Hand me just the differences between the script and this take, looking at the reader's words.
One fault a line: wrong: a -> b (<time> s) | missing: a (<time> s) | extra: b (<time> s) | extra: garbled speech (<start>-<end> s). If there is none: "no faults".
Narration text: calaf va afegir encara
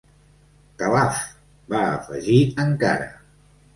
no faults